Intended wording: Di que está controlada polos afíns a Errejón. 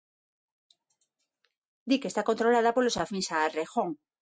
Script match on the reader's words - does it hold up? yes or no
yes